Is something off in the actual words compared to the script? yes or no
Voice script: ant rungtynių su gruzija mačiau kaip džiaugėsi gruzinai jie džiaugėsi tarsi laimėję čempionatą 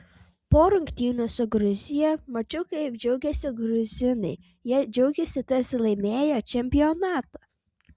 yes